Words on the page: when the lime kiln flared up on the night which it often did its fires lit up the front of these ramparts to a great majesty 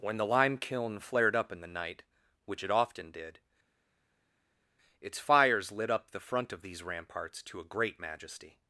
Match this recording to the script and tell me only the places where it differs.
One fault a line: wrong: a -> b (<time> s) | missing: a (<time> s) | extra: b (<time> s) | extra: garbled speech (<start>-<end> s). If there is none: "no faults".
wrong: on -> in (1.5 s)